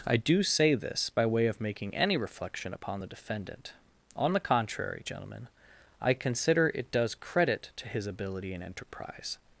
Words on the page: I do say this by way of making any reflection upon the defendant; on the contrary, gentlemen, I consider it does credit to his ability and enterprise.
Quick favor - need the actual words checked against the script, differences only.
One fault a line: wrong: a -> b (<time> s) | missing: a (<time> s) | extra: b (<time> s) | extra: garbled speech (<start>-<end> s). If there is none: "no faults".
no faults